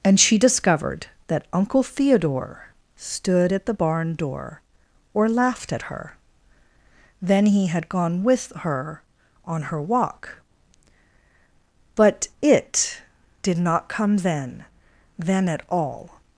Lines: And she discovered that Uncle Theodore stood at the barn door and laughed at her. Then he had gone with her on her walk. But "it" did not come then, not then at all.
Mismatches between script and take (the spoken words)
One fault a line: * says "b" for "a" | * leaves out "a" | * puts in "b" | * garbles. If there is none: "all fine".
* says "or" for "and"
* leaves out "not"